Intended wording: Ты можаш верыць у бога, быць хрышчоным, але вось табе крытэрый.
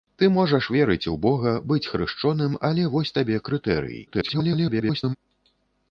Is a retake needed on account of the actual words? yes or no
yes